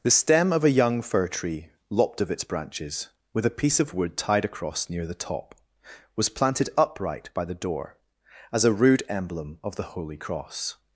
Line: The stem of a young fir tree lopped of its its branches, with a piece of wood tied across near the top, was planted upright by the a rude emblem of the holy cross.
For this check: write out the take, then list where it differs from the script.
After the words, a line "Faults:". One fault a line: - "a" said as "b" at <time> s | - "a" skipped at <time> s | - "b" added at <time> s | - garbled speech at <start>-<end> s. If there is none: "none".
The stem of a young fir tree lopped of its branches, with a piece of wood tied across near the top, was planted upright by the door, as a rude emblem of the holy cross.
Faults:
- "its" skipped at 2.4 s
- "door as" added at 7.5 s